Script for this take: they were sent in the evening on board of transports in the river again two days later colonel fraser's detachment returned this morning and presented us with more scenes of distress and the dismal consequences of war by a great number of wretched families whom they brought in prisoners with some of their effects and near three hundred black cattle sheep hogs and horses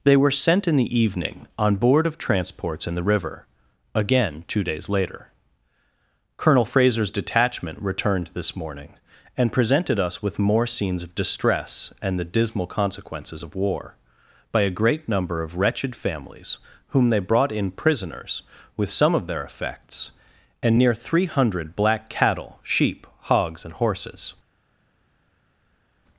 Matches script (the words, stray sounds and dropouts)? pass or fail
pass